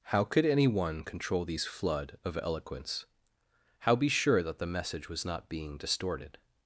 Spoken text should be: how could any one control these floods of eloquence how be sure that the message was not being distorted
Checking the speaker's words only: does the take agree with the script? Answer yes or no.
no